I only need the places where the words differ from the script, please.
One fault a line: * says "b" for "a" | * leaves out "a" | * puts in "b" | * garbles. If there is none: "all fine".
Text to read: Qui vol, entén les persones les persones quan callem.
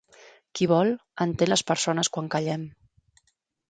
* leaves out "les persones"